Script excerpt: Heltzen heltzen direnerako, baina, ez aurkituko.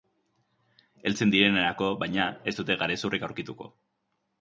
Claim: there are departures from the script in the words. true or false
true